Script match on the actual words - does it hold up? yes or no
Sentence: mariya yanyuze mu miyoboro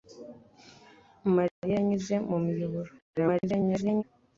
no